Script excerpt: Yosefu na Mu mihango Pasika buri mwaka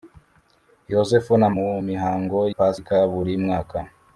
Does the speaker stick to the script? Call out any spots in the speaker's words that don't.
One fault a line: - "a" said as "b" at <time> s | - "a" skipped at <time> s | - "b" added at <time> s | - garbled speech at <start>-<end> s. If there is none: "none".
none